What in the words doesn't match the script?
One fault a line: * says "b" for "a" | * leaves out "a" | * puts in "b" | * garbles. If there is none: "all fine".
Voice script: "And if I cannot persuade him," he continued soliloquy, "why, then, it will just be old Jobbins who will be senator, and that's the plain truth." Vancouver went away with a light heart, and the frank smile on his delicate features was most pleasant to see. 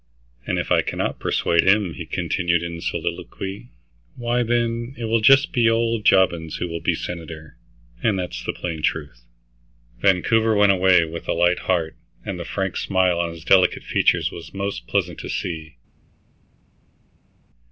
* puts in "in"